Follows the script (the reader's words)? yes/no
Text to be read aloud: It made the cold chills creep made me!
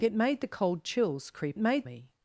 yes